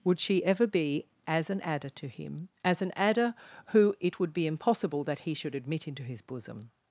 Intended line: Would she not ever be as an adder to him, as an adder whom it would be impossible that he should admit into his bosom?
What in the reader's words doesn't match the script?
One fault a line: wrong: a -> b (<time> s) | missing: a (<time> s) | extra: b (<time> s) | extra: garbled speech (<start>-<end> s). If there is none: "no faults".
missing: not (0.4 s)
wrong: whom -> who (3.7 s)